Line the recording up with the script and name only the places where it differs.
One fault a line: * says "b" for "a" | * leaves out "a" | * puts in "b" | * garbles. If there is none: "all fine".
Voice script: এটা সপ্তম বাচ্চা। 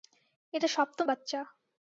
all fine